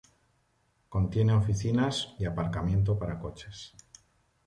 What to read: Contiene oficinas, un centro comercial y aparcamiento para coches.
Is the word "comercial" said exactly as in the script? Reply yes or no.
no